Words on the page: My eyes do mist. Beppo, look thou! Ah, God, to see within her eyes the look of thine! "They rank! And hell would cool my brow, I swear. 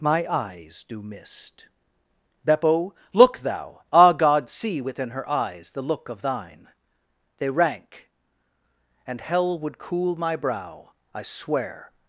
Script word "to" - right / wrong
wrong